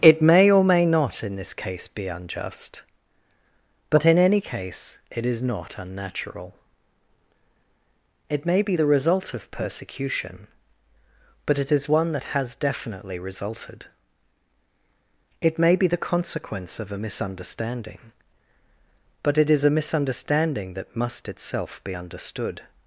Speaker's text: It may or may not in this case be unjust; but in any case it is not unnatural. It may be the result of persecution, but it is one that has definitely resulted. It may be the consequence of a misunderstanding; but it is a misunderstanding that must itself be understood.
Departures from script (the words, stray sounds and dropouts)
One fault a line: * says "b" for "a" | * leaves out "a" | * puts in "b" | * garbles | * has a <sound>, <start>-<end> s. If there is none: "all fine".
all fine